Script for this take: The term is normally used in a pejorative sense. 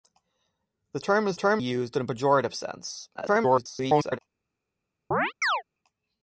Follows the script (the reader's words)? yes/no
no